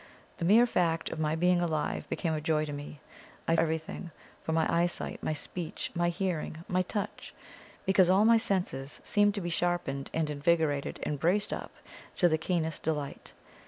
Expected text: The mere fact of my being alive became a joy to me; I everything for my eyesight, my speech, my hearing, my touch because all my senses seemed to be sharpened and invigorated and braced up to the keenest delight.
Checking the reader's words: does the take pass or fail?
pass